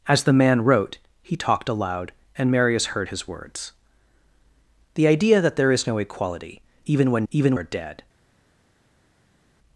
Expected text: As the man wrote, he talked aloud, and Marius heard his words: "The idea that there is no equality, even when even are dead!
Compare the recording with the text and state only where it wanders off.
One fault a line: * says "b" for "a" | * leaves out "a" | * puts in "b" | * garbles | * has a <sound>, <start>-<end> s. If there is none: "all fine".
all fine